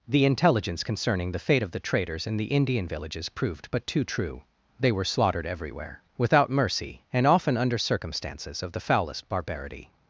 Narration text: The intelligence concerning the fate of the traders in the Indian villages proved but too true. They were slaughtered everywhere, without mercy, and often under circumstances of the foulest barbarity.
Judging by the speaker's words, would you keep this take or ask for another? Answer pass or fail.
pass